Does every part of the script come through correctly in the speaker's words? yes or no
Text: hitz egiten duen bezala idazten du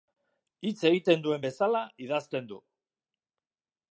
yes